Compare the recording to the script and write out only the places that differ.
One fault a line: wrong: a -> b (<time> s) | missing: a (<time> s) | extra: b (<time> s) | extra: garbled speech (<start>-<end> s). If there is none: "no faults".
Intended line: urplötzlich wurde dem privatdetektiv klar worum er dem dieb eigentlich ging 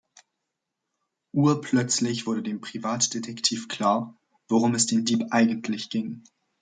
wrong: er -> es (4.7 s)